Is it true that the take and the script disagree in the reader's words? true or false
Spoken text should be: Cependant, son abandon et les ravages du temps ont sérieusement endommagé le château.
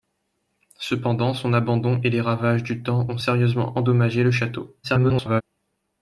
true